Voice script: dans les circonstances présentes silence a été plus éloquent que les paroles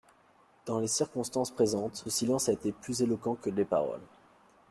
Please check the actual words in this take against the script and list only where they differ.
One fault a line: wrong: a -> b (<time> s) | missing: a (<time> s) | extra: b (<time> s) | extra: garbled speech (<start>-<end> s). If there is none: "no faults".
no faults